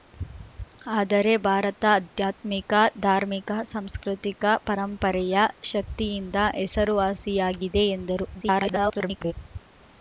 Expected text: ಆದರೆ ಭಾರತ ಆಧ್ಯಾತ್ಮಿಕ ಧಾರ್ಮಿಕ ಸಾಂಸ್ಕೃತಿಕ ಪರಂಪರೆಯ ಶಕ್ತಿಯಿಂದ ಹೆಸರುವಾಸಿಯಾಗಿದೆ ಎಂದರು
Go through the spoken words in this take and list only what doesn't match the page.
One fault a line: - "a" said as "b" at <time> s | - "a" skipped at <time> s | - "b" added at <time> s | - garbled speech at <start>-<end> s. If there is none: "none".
- garbled speech at 8.3-9.3 s